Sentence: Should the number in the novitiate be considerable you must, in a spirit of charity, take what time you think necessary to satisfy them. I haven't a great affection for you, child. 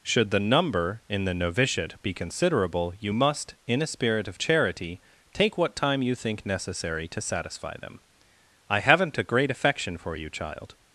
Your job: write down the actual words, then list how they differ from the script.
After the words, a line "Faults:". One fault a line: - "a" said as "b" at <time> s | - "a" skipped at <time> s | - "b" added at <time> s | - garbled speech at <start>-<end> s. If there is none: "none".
Should the number in the novitiate be considerable you must, in a spirit of charity, take what time you think necessary to satisfy them. I haven't a great affection for you, child.
Faults:
none